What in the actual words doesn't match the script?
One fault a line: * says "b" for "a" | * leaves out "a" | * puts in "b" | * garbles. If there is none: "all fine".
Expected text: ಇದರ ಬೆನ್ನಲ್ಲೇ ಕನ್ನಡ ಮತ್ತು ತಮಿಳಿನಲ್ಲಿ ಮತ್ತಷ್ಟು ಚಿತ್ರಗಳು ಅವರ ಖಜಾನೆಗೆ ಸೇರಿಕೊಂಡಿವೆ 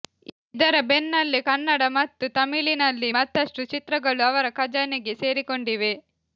all fine